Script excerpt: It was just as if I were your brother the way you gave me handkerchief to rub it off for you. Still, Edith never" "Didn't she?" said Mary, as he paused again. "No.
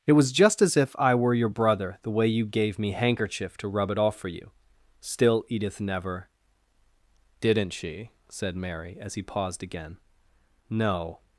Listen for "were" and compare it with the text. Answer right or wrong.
right